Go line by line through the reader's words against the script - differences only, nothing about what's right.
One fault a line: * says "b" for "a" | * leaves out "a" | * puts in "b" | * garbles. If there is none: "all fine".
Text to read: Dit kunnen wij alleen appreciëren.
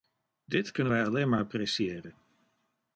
* puts in "maar"